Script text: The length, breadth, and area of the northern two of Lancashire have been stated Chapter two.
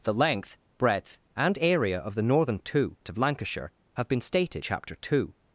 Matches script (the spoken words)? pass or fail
pass